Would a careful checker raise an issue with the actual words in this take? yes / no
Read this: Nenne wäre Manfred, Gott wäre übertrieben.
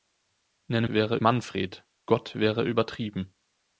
no